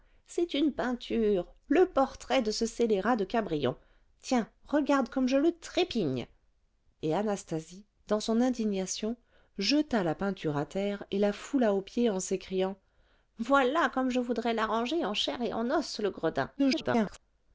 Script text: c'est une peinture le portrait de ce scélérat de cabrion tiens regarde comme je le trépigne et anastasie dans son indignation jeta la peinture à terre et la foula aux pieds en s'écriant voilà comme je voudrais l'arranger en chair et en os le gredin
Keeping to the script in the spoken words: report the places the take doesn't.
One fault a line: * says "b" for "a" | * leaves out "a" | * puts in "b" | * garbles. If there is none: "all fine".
* garbles